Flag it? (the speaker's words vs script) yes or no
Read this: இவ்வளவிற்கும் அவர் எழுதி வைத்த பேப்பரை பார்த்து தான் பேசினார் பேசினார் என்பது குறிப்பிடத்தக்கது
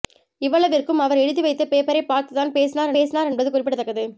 no